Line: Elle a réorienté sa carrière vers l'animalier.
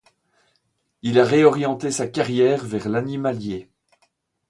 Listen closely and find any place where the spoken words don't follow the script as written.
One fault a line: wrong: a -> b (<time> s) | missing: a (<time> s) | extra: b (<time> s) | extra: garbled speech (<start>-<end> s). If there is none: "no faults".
wrong: Elle -> Il (1.0 s)